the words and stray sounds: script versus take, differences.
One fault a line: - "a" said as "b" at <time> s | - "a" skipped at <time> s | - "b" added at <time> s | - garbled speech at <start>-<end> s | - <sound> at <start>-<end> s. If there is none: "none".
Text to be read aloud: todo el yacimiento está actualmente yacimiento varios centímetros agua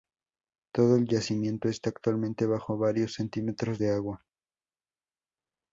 - "yacimiento" said as "bajo" at 2.5 s
- "de" added at 3.8 s